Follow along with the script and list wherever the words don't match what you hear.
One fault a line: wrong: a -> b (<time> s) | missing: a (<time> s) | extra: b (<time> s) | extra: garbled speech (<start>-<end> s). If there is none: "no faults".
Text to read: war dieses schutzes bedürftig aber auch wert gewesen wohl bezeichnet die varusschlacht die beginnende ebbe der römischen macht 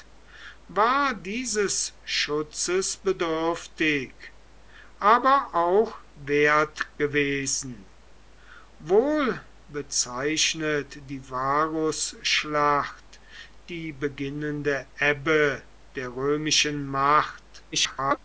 extra: garbled speech (17.7-18.2 s)